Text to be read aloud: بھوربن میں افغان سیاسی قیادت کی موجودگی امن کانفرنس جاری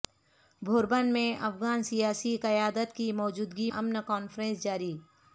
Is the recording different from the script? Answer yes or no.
no